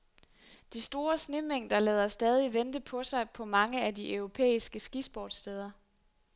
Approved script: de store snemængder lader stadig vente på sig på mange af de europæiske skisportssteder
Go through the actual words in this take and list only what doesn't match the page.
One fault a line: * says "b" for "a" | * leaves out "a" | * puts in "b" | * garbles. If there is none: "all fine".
all fine